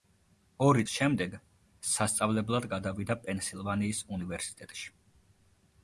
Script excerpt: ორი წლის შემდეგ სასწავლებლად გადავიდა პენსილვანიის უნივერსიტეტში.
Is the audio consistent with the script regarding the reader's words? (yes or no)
no